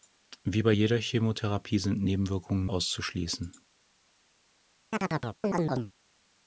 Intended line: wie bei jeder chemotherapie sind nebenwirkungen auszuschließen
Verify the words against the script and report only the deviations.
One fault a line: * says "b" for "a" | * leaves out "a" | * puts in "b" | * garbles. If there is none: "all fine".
all fine